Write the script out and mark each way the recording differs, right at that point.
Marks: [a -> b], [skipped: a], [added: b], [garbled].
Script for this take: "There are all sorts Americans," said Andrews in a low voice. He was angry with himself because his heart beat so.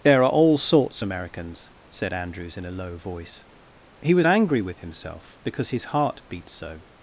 "There are all sorts Americans," said Andrews in a low voice. He was angry with himself because his heart beat so.